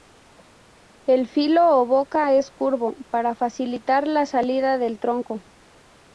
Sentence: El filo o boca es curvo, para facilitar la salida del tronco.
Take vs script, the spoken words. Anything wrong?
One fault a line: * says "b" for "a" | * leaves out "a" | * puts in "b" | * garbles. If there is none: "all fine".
all fine